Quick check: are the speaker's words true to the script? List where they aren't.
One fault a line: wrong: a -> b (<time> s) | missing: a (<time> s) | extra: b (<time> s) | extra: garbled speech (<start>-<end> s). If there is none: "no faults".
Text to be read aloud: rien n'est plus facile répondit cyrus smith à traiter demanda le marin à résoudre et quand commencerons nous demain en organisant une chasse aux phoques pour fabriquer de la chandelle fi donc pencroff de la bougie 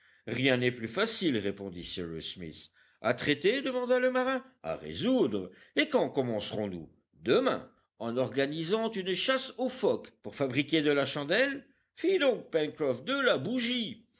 no faults